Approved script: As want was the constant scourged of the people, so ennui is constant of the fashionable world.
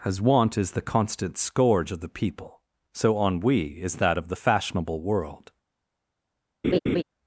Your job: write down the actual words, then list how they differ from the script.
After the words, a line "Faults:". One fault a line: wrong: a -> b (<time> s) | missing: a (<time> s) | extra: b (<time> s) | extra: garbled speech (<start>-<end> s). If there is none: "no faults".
As want is the constant scourge of the people, so ennui is that of the fashionable world.
Faults:
wrong: was -> is (0.6 s)
wrong: scourged -> scourge (1.4 s)
wrong: constant -> that (4.0 s)